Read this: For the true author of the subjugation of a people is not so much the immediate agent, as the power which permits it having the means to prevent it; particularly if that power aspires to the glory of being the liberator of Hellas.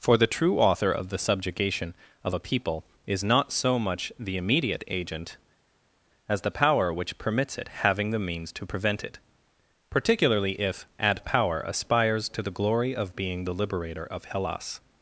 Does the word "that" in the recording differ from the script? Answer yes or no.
yes